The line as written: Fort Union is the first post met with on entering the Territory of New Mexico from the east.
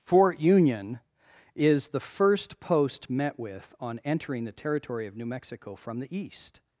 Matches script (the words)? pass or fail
pass